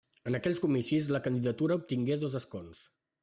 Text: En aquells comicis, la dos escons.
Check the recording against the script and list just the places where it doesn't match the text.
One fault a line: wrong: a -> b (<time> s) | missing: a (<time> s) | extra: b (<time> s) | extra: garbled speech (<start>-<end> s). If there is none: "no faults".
extra: candidatura obtingué (1.3 s)